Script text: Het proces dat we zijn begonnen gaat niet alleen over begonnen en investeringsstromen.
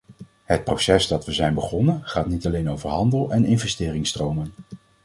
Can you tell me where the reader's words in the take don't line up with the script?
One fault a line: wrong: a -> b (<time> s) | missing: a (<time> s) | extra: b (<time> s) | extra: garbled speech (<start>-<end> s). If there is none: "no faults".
wrong: begonnen -> handel (2.9 s)